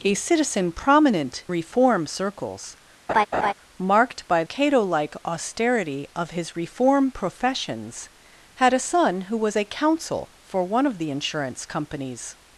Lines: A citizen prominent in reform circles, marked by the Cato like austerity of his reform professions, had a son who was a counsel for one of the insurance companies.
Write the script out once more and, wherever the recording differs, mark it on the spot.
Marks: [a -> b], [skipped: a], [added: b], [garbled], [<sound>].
A citizen prominent [skipped: in] reform circles, [laugh] marked by [skipped: the] Cato like austerity of his reform professions, had a son who was a counsel for one of the insurance companies.